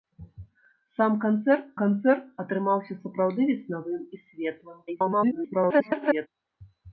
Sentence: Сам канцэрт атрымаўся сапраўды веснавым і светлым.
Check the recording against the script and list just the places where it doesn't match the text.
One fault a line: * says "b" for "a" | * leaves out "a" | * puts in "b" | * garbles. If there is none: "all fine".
* puts in "канцэрт"
* garbles